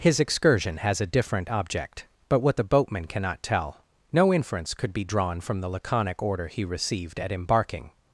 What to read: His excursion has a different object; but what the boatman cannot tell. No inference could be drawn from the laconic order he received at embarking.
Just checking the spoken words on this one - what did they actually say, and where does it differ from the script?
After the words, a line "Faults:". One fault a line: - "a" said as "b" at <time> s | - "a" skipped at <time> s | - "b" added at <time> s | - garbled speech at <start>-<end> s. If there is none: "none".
His excursion has a different object; but what the boatman cannot tell. No inference could be drawn from the laconic order he received at embarking.
Faults:
none